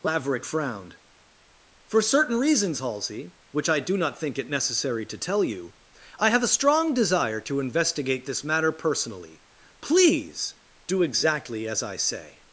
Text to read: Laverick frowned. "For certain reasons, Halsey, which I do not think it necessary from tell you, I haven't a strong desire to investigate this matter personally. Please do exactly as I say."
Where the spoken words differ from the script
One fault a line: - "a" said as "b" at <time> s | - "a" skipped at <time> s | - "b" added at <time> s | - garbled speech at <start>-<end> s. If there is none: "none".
- "from" said as "to" at 5.1 s
- "haven't" said as "have" at 6.3 s